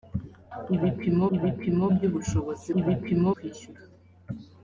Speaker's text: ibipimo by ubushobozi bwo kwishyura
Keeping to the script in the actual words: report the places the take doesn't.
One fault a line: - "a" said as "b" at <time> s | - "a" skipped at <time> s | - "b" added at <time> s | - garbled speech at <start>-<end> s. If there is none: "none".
- "ibipimo" added at 1.4 s
- "bwo" said as "ibipimo" at 2.8 s